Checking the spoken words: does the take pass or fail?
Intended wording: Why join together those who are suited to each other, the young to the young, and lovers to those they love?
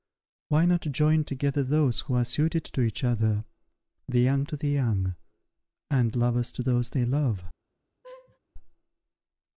fail